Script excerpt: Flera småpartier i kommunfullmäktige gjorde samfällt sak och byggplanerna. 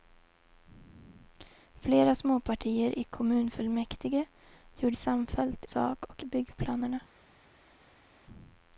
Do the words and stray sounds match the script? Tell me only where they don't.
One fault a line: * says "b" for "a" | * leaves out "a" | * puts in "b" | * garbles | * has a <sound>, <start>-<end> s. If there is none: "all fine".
all fine